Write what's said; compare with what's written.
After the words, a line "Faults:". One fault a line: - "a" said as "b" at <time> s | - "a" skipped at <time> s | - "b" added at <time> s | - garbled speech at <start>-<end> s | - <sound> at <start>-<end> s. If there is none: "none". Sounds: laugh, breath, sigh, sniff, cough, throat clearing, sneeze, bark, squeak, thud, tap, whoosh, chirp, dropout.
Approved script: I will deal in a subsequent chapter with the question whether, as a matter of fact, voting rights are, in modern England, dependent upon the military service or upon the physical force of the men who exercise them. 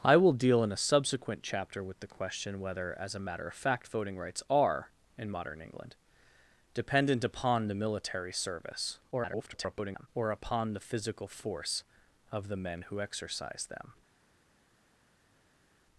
I will deal in a subsequent chapter with the question whether, as a matter of fact, voting rights are, in modern England, dependent upon the military service [garbled] or upon the physical force of the men who exercise them.
Faults:
- garbled speech at 9.1-10.1 s